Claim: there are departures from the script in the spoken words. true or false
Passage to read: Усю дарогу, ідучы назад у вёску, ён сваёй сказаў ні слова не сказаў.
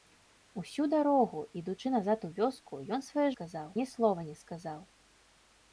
false